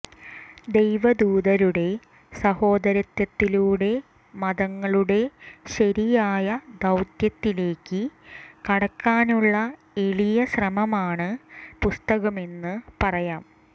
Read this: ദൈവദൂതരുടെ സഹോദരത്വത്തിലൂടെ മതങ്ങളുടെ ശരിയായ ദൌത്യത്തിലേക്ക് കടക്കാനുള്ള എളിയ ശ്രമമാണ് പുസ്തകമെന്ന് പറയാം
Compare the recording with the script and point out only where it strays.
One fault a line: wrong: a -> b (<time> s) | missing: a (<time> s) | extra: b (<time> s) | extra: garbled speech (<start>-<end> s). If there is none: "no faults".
no faults